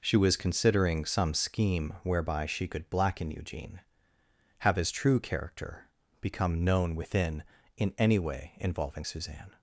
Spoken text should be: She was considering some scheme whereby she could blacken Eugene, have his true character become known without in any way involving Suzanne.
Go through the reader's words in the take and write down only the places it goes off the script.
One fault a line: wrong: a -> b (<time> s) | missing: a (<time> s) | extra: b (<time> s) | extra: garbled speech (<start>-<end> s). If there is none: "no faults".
wrong: without -> within (7.0 s)